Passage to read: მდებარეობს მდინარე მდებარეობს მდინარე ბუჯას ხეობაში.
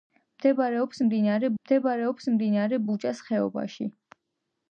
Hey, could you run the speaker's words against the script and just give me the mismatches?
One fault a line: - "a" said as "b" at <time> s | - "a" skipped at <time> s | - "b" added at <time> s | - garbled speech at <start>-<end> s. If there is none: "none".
none